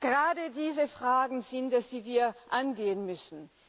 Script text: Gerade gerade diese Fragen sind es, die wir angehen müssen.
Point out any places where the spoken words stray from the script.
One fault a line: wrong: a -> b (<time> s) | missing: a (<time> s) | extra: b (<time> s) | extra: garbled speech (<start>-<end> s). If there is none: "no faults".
missing: gerade (0.5 s)